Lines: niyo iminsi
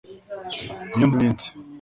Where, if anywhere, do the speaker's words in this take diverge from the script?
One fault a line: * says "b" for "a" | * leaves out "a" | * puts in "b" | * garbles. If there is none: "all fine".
all fine